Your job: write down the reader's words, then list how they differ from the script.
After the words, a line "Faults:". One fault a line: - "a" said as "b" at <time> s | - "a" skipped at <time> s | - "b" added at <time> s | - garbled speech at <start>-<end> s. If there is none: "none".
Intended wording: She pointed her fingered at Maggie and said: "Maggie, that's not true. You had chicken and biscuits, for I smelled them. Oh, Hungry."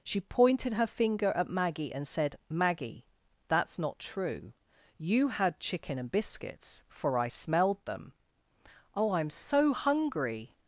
She pointed her finger at Maggie and said: "Maggie, that's not true. You had chicken and biscuits, for I smelled them. Oh, I'm so hungry."
Faults:
- "fingered" said as "finger" at 0.9 s
- "I'm so" added at 9.1 s